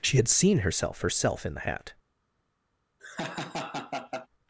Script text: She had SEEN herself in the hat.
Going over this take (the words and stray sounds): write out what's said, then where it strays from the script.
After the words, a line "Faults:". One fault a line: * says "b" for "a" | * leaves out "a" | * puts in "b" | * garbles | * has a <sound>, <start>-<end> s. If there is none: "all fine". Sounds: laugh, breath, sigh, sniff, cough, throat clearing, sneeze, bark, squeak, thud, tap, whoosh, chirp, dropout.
She had SEEN herself herself in the hat.
Faults:
* puts in "herself"
* has a laugh, 3.0-4.3 s